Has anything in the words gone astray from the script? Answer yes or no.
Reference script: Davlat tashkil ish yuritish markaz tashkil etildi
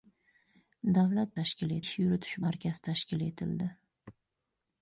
no